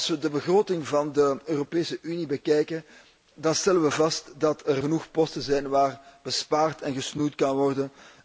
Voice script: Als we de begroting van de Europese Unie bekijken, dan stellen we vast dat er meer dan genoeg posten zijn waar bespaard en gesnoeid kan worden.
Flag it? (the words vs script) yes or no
yes